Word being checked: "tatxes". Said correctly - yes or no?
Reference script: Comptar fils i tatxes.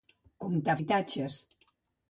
yes